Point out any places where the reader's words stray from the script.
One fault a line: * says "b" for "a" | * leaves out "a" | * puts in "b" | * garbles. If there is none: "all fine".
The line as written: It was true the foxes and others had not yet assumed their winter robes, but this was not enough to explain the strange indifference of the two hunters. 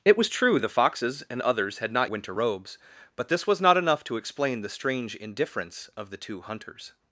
* leaves out "yet assumed their"